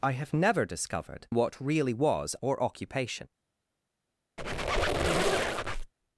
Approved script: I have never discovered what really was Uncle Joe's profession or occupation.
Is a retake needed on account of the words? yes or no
yes